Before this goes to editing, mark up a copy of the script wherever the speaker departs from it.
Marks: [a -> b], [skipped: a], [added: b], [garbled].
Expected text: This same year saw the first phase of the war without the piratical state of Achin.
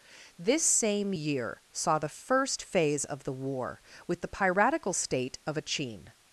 This same year saw the first phase of the war [without -> with] the piratical state of Achin.